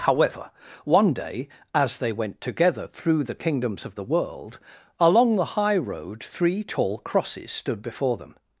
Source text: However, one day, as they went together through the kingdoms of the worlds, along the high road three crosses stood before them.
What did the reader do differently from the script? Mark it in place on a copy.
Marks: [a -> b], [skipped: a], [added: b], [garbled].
However, one day, as they went together through the kingdoms of the [worlds, -> world] along the high road three [added: tall] crosses stood before them.